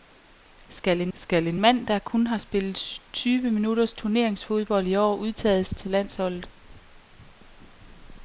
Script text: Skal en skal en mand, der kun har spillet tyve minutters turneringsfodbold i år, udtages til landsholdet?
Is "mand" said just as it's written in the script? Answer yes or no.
yes